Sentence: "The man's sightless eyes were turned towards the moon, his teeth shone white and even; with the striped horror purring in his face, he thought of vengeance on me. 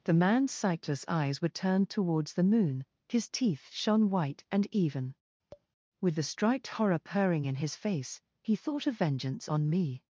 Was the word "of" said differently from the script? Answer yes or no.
no